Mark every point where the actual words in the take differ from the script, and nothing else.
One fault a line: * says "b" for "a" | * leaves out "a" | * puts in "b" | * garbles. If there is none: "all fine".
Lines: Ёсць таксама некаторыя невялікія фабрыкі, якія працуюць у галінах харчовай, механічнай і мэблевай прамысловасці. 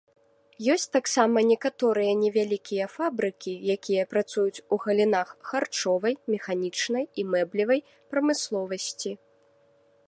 all fine